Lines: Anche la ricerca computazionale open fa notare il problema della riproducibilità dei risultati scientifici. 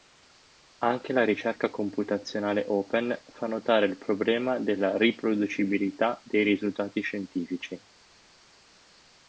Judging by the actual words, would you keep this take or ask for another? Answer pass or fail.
pass